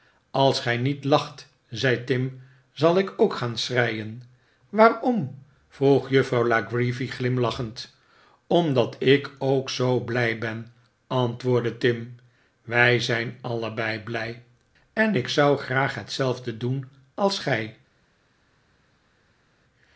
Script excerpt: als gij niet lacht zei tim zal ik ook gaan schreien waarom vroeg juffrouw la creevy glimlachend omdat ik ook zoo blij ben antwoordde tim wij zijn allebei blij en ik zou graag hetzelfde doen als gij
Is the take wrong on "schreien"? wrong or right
right